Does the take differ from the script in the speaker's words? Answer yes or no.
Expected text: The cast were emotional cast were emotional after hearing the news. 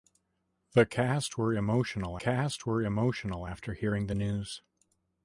no